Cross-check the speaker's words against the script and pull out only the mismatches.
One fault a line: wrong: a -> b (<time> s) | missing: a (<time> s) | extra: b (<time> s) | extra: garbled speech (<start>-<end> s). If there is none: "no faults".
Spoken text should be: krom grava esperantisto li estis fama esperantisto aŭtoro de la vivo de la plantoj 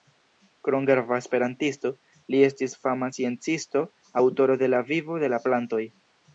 wrong: esperantisto -> sciencisto (3.2 s)